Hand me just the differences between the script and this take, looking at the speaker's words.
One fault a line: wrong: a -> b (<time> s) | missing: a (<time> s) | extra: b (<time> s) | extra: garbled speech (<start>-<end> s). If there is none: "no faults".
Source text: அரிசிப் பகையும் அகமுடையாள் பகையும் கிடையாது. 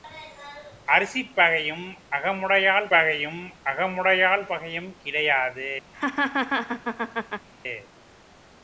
extra: அகமுடையாள் பகையும் (3.6 s)